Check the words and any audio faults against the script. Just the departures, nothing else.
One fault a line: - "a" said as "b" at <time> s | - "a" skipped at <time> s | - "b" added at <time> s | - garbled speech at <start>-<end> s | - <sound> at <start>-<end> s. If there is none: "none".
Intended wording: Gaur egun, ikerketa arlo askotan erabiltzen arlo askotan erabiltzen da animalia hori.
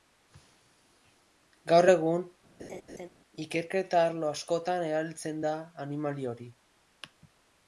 - laugh at 2.6-3.1 s
- "arlo askotan erabiltzen" skipped at 5.4 s